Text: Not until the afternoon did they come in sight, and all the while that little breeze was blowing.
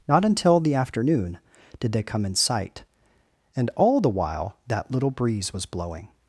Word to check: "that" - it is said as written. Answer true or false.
true